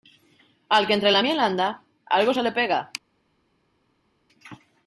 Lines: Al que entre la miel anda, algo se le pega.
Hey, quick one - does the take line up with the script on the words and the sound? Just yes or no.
yes